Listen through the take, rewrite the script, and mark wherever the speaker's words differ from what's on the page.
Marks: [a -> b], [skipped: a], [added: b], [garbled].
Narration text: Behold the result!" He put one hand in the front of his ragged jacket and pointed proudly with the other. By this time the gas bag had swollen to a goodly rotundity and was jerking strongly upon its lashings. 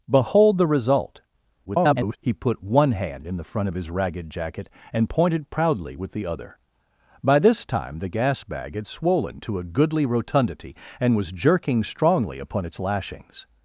Behold the result!" [garbled] He put one hand in the front of his ragged jacket and pointed proudly with the other. By this time the gas bag had swollen to a goodly rotundity and was jerking strongly upon its lashings.